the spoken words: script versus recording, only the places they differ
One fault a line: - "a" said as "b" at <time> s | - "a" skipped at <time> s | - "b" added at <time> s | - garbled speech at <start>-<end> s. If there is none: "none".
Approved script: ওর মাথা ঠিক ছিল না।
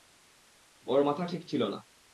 none